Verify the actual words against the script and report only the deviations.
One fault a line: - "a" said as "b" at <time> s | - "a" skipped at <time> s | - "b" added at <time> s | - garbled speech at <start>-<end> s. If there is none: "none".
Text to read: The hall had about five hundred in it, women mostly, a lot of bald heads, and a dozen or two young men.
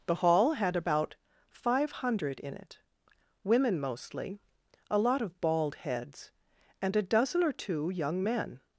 none